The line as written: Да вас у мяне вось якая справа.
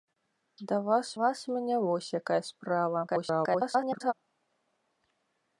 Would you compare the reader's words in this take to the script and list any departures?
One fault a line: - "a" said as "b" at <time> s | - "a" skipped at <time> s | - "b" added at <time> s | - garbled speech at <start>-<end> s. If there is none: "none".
- "вас" added at 1.2 s
- garbled speech at 3.1-4.1 s